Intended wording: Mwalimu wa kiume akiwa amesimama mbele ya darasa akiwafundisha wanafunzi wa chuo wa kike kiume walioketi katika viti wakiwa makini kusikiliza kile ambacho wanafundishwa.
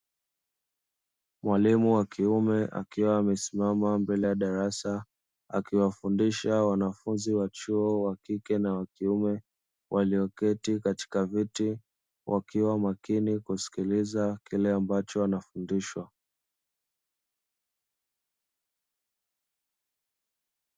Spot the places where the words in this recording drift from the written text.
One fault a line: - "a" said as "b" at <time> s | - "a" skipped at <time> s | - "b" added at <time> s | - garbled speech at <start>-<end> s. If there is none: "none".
- "na wa" added at 8.6 s